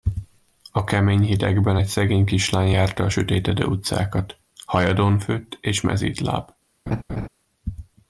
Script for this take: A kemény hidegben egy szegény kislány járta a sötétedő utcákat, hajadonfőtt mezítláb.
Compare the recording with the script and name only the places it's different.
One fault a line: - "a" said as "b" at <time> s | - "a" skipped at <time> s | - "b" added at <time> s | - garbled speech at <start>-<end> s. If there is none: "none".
- "és" added at 5.6 s